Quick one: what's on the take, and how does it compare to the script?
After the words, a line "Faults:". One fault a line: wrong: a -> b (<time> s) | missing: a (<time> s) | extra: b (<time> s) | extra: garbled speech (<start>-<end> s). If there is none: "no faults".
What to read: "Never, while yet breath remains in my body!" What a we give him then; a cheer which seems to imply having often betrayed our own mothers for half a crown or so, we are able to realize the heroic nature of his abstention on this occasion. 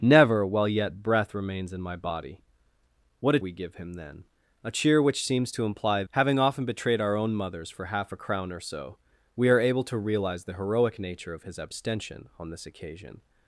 "Never, while yet breath remains in my body!" What a we give him then; a cheer which seems to imply having often betrayed our own mothers for half a crown or so, we are able to realize the heroic nature of his abstention on this occasion.
Faults:
no faults